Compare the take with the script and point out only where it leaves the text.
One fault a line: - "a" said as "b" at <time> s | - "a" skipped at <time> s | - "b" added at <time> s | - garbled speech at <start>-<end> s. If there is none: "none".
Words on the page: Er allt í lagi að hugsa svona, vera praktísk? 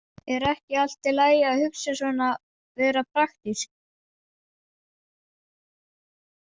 - "ekki" added at 0.5 s